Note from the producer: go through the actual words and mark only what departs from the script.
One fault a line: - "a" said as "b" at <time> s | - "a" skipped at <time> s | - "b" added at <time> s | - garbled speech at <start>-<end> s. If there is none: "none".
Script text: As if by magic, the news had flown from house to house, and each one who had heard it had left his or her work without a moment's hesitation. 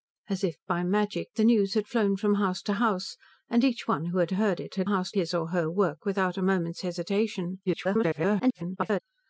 - "left" said as "house" at 4.8 s
- garbled speech at 7.7-9.0 s